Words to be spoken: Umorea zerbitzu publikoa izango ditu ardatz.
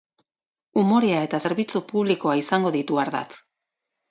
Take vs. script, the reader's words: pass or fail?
fail